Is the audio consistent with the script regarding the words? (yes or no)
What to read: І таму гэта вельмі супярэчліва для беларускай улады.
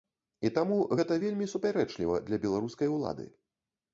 yes